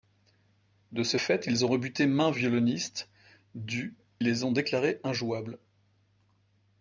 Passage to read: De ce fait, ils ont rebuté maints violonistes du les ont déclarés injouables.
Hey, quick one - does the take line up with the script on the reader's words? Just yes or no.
yes